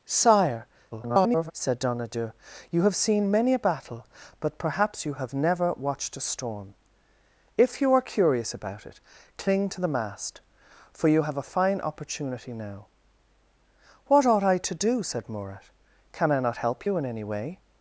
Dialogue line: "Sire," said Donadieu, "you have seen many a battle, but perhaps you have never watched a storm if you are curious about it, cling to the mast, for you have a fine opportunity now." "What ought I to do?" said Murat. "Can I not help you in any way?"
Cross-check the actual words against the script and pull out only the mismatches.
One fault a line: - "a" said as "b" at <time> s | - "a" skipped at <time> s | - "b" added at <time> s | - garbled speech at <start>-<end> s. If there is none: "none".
- garbled speech at 0.9-1.5 s